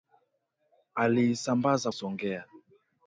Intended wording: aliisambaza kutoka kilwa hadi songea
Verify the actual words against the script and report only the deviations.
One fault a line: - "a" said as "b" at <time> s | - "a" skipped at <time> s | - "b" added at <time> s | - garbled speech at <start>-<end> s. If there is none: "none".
- "kutoka kilwa hadi" skipped at 1.9 s